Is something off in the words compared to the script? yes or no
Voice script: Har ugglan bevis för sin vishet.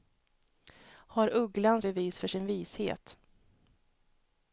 no